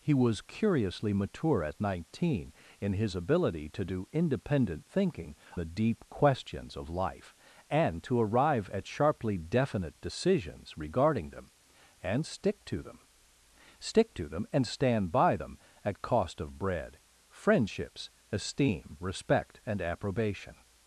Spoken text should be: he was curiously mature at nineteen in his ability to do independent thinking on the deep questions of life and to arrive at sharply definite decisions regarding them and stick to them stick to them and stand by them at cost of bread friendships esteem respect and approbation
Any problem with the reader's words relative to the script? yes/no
yes